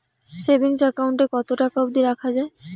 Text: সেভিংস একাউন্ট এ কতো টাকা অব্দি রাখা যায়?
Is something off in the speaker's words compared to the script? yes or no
no